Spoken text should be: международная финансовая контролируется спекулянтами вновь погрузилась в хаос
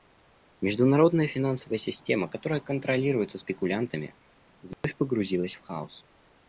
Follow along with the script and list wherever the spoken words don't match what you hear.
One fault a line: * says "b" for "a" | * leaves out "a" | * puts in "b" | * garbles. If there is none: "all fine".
* puts in "система которая"